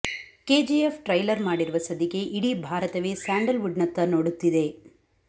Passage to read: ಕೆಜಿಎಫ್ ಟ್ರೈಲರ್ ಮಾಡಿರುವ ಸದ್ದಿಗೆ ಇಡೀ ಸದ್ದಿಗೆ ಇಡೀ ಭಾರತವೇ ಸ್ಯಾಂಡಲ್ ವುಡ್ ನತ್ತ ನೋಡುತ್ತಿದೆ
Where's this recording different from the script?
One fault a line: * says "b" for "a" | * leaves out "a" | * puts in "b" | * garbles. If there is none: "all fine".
* leaves out "ಸದ್ದಿಗೆ ಇಡೀ"